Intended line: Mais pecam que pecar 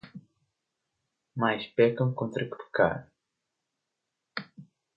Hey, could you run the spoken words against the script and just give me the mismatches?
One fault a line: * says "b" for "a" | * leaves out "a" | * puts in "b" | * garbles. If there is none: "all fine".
* puts in "contra"